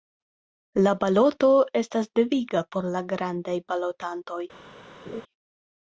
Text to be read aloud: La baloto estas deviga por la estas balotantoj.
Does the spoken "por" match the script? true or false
true